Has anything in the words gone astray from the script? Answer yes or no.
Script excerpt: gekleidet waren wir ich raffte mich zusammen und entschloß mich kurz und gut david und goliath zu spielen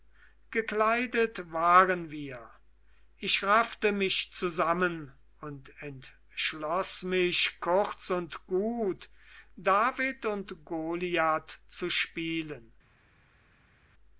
no